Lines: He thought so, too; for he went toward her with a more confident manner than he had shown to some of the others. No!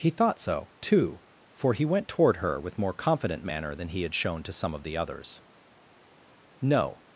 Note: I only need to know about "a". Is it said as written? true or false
false